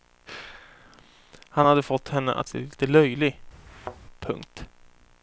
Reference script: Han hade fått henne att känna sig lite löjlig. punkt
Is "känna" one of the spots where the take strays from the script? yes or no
yes